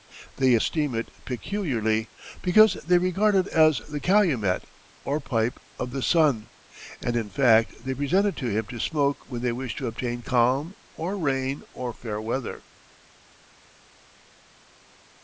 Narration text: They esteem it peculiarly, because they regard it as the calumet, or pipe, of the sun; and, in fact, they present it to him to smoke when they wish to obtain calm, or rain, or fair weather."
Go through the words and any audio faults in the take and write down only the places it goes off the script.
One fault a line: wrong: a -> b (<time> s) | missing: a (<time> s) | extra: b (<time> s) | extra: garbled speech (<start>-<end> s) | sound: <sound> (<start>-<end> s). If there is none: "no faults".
no faults